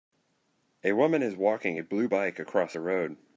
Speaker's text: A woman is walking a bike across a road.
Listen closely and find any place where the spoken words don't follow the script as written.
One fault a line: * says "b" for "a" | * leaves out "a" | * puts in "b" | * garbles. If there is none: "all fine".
* puts in "blue"